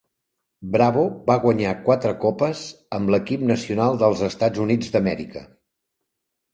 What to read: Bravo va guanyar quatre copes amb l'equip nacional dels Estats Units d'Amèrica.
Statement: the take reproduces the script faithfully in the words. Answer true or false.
true